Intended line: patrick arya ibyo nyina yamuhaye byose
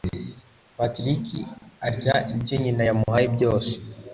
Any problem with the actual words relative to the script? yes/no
no